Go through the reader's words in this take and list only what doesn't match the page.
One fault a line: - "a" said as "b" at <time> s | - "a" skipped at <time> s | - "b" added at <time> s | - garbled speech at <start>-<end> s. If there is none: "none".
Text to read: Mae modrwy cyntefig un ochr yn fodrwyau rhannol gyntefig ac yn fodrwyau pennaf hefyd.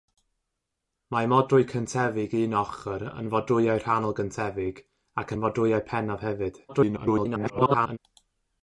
- garbled speech at 6.7-8.0 s